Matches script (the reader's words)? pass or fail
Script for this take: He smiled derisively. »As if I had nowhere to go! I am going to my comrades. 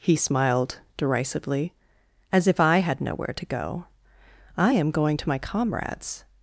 pass